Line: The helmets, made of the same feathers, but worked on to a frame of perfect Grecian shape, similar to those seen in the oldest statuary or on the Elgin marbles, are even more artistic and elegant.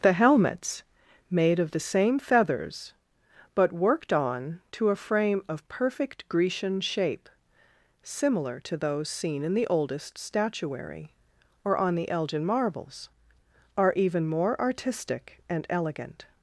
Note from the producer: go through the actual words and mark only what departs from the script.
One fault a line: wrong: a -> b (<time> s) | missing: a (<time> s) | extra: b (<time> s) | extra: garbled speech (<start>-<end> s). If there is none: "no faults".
no faults